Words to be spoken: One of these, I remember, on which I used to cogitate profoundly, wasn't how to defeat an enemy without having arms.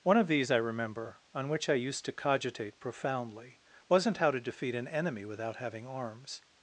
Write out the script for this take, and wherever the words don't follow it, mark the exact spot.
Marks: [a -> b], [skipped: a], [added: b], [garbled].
One of these, I remember, on which I used to cogitate profoundly, wasn't how to defeat an enemy without having arms.